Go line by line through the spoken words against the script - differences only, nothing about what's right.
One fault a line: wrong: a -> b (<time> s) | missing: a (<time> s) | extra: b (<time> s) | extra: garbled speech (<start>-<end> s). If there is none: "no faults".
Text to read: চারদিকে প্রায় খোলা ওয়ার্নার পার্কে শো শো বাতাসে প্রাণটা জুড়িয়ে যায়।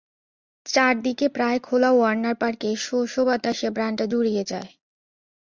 no faults